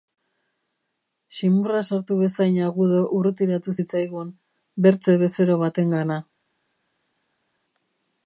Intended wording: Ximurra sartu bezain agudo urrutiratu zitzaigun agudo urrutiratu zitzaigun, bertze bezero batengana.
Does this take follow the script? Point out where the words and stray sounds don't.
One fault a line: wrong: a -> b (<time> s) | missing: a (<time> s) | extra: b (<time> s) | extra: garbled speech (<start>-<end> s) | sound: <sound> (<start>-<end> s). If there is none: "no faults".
missing: agudo urrutiratu zitzaigun (4.3 s)